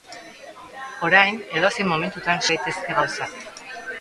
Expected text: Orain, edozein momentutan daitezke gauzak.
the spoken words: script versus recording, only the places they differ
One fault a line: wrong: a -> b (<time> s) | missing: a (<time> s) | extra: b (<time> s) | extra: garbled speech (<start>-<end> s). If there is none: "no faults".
no faults